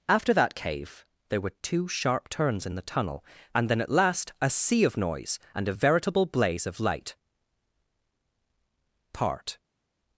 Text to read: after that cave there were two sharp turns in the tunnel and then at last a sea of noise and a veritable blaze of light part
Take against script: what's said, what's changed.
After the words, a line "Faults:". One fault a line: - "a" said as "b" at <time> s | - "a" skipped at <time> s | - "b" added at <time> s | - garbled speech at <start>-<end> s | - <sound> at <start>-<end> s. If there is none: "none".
after that cave there were two sharp turns in the tunnel and then at last a sea of noise and a veritable blaze of light part
Faults:
none